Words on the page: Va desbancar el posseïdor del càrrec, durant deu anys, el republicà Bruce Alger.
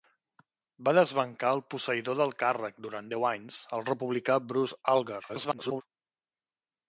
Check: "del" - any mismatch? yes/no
no